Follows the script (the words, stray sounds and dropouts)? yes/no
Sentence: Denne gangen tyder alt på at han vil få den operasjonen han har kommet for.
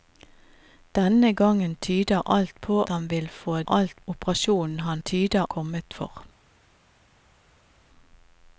no